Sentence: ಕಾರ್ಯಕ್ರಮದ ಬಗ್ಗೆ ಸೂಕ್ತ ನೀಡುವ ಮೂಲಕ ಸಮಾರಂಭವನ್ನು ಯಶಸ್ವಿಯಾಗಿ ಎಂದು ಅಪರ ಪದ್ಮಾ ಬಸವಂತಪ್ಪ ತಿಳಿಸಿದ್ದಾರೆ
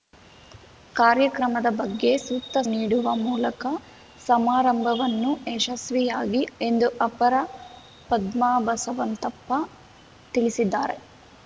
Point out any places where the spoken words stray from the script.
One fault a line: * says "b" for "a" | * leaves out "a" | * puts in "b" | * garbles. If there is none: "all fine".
all fine